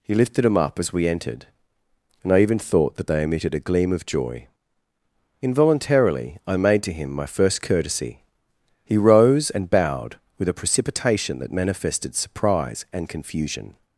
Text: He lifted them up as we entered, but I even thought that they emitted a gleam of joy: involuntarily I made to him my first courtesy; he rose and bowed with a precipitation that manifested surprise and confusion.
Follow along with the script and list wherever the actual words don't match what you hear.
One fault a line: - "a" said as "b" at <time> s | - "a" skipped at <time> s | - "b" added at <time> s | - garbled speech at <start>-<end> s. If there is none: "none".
- "but" said as "and" at 2.2 s